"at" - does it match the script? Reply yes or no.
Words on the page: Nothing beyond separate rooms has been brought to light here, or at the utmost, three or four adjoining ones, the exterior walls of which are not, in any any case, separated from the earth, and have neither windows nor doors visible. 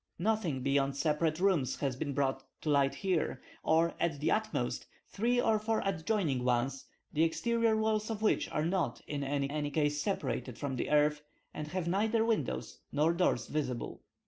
yes